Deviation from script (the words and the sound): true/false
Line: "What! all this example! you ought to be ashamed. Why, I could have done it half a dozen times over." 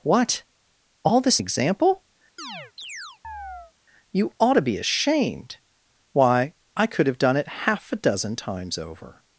true